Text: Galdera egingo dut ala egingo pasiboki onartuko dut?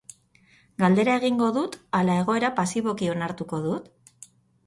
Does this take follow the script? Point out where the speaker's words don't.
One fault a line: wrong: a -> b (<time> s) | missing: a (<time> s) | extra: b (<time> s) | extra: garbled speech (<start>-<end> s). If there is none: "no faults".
wrong: egingo -> egoera (2.2 s)